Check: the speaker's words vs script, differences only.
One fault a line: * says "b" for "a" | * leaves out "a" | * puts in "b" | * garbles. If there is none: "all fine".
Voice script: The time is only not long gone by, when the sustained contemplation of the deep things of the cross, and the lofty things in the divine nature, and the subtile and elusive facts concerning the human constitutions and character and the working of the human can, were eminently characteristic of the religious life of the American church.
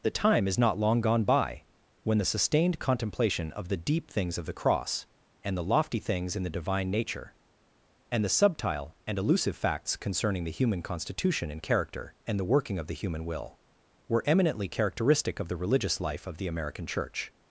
* leaves out "only"
* says "constitution" for "constitutions"
* says "will" for "can"